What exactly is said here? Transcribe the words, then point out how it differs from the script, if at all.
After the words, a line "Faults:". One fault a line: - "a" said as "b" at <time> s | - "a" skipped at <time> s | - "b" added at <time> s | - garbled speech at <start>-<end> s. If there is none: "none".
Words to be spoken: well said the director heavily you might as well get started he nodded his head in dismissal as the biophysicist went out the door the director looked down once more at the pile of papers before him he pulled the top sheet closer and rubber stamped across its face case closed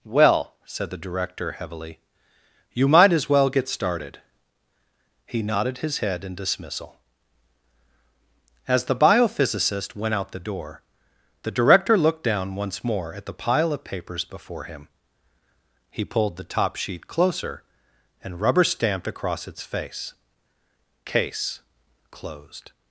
well said the director heavily you might as well get started he nodded his head in dismissal as the biophysicist went out the door the director looked down once more at the pile of papers before him he pulled the top sheet closer and rubber stamped across its face case closed
Faults:
none